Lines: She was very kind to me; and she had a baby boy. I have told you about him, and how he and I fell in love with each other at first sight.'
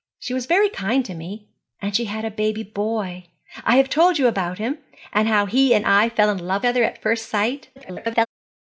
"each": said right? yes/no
no